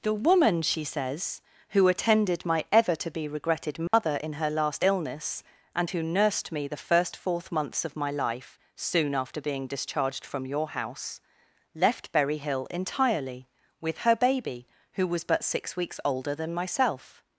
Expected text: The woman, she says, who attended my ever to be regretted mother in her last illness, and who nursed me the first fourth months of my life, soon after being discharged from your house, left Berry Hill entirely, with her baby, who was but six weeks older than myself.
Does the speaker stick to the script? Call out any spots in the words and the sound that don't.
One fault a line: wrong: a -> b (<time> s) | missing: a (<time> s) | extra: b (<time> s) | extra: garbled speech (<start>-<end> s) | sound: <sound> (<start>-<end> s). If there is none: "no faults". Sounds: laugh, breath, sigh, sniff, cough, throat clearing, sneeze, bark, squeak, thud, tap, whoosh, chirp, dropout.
sound: dropout (3.9-3.9 s)